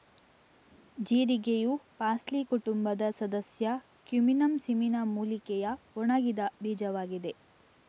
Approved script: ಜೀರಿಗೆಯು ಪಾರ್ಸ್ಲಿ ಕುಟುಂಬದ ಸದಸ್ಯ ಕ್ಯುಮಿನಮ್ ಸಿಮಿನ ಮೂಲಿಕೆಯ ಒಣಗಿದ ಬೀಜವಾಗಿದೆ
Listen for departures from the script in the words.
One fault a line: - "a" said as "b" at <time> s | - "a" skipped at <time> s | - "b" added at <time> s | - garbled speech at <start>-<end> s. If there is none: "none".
none